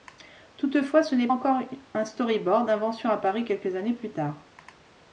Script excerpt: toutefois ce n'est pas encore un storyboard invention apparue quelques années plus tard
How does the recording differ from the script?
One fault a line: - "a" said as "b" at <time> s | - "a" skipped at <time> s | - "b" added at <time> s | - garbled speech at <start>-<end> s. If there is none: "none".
- "pas" skipped at 1.3 s